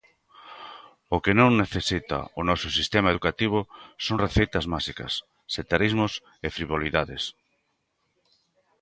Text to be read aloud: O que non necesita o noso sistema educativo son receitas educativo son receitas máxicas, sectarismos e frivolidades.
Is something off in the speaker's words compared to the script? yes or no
yes